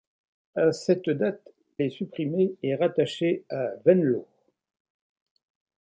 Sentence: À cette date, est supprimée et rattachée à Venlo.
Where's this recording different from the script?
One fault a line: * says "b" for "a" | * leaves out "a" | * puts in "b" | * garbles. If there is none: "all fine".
all fine